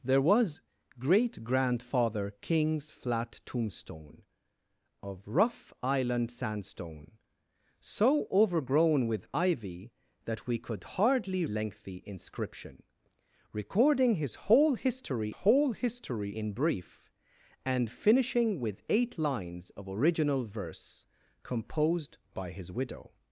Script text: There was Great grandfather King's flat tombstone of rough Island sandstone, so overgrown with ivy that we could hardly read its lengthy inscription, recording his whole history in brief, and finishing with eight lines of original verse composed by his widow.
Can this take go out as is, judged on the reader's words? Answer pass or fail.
fail